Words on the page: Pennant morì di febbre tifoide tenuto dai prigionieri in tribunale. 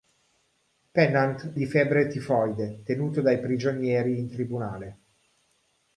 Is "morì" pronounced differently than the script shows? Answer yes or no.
yes